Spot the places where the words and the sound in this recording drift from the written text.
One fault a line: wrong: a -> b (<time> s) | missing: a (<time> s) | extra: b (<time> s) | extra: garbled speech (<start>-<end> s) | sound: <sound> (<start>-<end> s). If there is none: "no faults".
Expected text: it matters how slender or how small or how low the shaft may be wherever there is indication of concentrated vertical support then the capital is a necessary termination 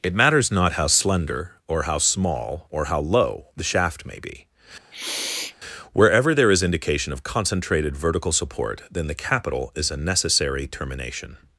extra: not (0.5 s)
sound: sniff (4.9-5.6 s)